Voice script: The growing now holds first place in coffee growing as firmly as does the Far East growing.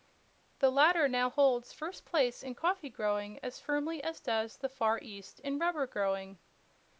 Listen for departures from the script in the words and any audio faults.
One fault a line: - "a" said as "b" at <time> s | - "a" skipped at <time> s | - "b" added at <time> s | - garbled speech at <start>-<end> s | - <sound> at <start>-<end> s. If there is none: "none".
- "growing" said as "latter" at 0.7 s
- "in rubber" added at 5.4 s